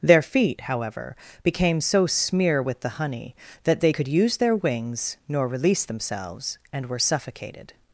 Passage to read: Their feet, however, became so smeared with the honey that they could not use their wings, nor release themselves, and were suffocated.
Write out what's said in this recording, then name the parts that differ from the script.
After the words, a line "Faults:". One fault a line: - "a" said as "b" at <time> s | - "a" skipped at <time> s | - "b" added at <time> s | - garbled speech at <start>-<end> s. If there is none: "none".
Their feet, however, became so smear with the honey that they could use their wings, nor release themselves, and were suffocated.
Faults:
- "smeared" said as "smear" at 2.1 s
- "not" skipped at 4.1 s